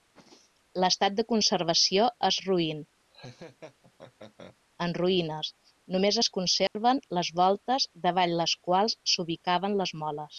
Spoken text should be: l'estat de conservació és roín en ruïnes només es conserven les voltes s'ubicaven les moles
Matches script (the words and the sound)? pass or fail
fail